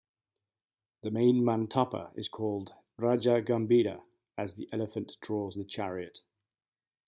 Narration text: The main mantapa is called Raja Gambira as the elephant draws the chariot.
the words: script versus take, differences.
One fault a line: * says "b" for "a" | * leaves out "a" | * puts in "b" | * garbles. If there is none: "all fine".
all fine